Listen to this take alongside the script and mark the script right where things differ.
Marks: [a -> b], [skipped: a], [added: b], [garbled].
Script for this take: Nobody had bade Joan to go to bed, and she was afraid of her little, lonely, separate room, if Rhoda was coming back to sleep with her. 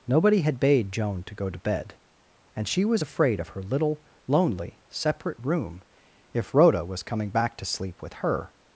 Nobody had bade Joan to go to bed, and she was afraid of her little, lonely, separate room, if Rhoda was coming back to sleep with her.